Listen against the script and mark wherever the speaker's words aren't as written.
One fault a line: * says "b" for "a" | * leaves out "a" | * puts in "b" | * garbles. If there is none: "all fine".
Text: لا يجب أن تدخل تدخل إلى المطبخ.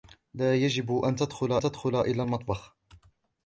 all fine